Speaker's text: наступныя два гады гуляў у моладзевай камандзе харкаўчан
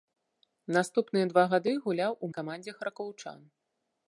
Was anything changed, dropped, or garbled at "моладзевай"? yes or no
yes